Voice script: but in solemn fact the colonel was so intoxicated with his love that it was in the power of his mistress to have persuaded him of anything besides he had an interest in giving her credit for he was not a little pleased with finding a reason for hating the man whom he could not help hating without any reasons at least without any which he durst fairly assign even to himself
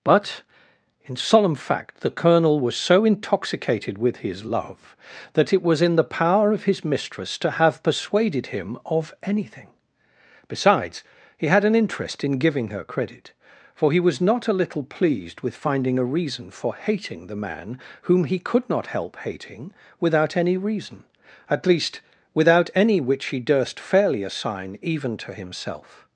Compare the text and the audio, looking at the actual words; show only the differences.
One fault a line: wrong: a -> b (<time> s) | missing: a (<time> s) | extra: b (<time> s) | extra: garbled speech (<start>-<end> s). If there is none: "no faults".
wrong: reasons -> reason (20.6 s)